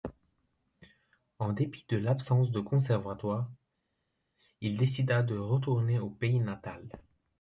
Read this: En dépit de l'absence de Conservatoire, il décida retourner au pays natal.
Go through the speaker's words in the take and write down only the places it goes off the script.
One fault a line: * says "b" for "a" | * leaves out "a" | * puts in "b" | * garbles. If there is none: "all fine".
* puts in "de"